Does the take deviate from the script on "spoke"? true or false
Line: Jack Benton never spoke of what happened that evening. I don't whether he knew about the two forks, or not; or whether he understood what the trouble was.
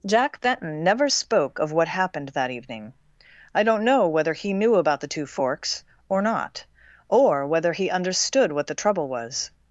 false